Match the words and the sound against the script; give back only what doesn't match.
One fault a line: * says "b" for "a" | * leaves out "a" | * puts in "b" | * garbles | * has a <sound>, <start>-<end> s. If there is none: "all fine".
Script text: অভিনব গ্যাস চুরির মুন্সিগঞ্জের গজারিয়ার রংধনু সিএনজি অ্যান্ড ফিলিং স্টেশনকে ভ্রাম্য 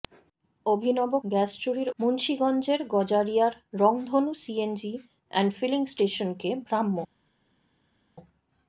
all fine